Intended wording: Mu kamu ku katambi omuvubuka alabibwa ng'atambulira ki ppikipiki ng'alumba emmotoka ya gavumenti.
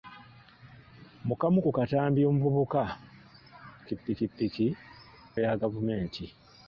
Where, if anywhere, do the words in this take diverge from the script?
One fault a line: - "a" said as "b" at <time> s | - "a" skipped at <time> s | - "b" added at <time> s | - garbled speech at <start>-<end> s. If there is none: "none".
- "alabibwa ng'atambulira" skipped at 2.8 s
- "ng'alumba emmotoka" skipped at 4.7 s